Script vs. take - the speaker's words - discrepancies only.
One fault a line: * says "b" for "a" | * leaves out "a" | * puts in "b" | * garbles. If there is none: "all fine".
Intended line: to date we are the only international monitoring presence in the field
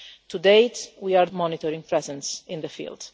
* leaves out "the only international"